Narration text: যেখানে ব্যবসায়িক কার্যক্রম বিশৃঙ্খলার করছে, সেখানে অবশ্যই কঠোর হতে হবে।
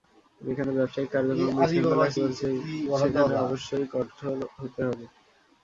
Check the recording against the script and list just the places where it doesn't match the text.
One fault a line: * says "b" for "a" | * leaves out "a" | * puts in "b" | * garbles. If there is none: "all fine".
all fine